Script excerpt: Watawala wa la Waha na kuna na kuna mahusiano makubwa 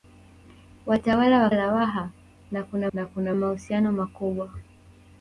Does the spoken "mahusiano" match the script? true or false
true